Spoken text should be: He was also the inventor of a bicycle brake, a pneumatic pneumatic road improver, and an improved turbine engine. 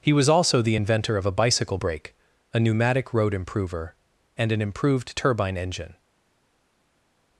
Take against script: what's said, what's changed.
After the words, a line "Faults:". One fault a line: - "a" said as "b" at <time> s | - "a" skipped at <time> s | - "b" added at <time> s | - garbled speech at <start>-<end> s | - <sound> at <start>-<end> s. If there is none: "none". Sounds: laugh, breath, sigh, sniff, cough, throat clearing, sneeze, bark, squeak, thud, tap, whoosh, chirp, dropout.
He was also the inventor of a bicycle brake, a pneumatic road improver, and an improved turbine engine.
Faults:
- "pneumatic" skipped at 3.1 s